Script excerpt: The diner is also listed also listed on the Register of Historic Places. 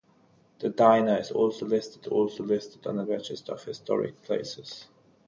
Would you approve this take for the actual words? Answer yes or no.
yes